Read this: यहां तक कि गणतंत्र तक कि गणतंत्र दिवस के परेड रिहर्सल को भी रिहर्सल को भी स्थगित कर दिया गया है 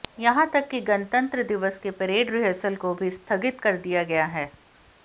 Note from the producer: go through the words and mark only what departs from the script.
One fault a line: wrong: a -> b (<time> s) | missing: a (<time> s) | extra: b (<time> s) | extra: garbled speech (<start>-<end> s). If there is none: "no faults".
missing: तक कि गणतंत्र (1.4 s)
missing: रिहर्सल को भी (3.1 s)